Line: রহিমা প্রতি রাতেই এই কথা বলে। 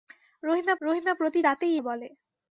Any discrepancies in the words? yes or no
yes